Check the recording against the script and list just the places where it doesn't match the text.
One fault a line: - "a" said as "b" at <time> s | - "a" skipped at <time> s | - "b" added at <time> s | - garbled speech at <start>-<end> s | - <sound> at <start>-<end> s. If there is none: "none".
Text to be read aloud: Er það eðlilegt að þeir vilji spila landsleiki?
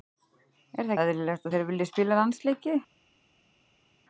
none